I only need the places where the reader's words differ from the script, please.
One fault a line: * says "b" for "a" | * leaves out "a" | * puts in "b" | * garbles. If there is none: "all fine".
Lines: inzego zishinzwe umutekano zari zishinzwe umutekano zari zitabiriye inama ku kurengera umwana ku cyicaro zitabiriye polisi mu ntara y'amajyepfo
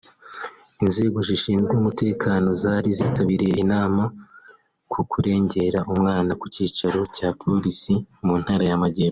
* leaves out "zishinzwe umutekano zari"
* says "cya" for "zitabiriye"